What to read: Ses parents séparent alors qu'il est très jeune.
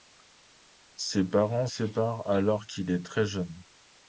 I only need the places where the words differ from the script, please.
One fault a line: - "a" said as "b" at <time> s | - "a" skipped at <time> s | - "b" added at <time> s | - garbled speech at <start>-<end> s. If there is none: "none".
none